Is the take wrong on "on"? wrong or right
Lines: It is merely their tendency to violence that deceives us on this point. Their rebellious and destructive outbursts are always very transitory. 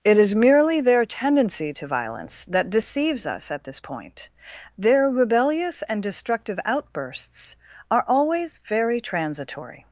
wrong